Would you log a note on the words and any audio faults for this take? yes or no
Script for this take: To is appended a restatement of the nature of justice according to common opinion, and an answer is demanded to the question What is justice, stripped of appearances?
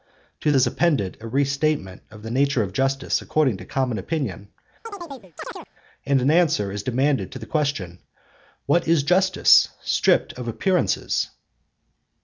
yes